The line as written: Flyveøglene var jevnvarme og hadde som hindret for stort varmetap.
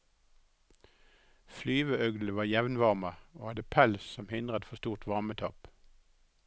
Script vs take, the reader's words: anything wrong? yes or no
yes